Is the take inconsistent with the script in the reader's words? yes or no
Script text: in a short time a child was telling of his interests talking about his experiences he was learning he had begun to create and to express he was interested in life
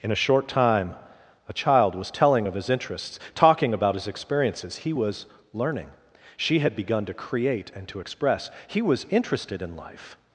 yes